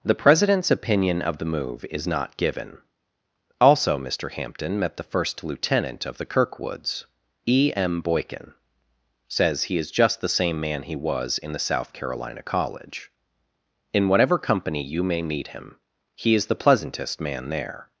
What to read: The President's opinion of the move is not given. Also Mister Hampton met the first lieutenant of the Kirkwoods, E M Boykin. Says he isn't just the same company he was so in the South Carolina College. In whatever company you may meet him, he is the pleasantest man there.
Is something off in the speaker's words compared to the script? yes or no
yes